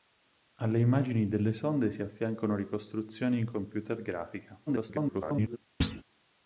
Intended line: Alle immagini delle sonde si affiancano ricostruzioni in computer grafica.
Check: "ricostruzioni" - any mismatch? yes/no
no